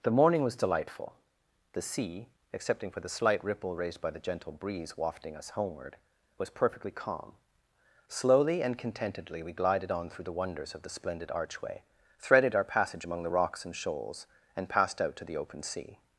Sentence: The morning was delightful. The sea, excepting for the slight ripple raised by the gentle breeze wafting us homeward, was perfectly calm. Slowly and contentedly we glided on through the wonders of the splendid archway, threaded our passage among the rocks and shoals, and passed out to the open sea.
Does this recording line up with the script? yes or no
yes